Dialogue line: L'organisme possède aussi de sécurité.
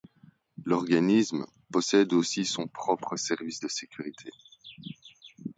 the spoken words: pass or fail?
fail